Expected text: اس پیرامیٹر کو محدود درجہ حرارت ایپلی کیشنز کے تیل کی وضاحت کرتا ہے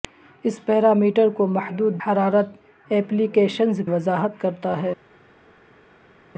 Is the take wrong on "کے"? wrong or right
wrong